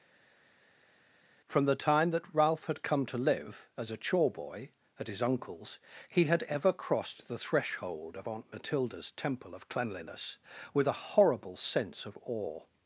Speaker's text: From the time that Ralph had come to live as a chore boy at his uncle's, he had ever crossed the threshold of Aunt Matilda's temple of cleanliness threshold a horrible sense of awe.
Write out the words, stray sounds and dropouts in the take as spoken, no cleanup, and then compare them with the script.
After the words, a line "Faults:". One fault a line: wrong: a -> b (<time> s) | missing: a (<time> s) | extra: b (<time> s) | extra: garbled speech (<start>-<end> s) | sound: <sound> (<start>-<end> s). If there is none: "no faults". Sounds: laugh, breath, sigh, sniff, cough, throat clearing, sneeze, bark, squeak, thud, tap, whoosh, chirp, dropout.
From the time that Ralph had come to live as a chore boy at his uncle's, he had ever crossed the threshold of Aunt Matilda's temple of cleanliness with a horrible sense of awe.
Faults:
wrong: threshold -> with (10.7 s)